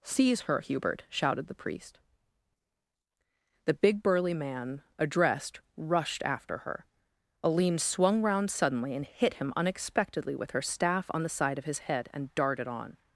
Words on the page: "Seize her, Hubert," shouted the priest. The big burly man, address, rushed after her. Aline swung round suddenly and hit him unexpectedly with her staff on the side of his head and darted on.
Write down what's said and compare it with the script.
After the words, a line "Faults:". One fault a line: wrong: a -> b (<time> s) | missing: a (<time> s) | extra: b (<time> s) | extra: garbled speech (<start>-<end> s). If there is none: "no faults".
"Seize her, Hubert," shouted the priest. The big burly man, addressed, rushed after her. Aline swung round suddenly and hit him unexpectedly with her staff on the side of his head and darted on.
Faults:
wrong: address -> addressed (5.0 s)